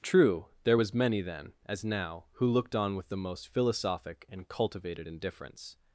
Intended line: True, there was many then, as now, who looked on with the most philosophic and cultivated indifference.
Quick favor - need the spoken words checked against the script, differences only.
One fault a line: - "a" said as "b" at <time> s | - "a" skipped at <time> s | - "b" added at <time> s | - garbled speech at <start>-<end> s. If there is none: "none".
none